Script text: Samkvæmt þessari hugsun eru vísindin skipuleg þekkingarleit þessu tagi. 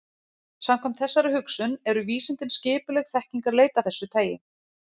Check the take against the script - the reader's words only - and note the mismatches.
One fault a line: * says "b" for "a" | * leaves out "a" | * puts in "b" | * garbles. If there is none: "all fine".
all fine